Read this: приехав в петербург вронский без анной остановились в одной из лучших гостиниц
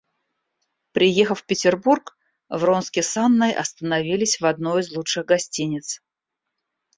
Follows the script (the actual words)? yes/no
no